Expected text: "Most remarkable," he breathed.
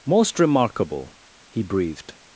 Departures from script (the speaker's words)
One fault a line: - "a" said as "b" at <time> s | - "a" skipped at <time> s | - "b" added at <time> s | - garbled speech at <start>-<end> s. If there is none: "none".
none